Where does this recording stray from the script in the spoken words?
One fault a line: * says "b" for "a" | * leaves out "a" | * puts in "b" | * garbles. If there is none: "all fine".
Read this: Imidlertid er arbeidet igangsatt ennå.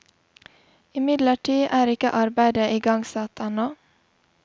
* puts in "ikke"